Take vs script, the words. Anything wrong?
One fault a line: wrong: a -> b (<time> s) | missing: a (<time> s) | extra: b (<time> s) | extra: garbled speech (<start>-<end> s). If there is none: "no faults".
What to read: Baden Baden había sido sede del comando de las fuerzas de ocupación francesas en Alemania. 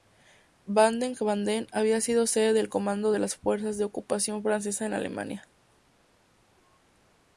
no faults